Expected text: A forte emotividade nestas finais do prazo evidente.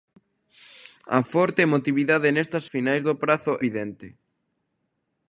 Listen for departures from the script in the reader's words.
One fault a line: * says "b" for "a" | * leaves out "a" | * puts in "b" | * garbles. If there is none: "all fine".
all fine